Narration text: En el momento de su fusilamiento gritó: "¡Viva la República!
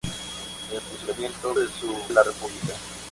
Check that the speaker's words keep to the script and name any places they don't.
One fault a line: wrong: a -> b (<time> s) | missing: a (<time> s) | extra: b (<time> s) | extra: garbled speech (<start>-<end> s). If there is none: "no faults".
wrong: momento -> fusilamiento (0.9 s)
missing: fusilamiento gritó Viva (1.9 s)